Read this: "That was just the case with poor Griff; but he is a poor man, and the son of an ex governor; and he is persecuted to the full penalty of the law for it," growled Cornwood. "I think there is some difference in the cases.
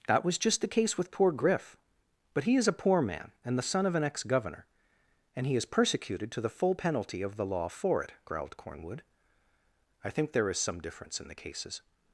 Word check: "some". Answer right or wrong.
right